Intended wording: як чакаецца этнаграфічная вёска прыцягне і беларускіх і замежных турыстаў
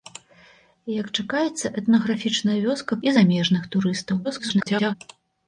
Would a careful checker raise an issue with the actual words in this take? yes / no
yes